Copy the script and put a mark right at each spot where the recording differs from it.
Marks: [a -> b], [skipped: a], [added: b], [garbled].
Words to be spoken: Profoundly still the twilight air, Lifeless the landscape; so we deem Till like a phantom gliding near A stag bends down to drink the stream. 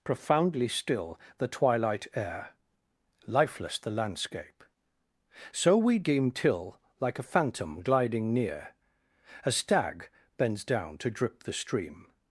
Profoundly still the twilight air, Lifeless the landscape; so we deem Till like a phantom gliding near A stag bends down to [drink -> drip] the stream.